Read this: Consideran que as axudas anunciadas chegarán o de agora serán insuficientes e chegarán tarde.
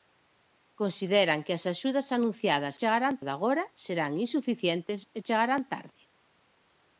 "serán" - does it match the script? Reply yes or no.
yes